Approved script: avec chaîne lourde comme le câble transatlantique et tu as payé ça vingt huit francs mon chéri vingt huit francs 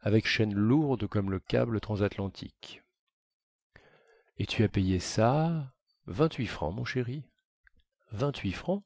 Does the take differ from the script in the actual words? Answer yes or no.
no